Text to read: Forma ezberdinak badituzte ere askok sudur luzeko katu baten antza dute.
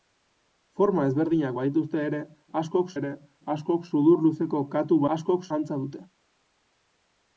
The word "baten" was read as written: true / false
false